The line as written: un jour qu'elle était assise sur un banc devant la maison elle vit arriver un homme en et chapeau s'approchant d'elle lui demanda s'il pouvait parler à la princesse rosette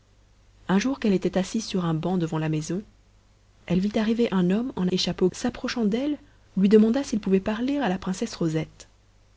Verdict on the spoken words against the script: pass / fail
pass